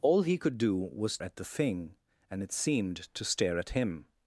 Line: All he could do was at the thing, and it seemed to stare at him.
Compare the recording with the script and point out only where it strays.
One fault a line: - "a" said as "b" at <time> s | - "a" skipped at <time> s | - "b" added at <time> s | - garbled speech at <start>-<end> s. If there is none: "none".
none